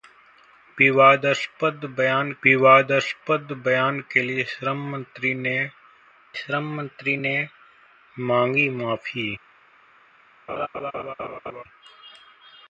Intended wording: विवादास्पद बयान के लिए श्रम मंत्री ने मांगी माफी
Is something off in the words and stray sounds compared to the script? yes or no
yes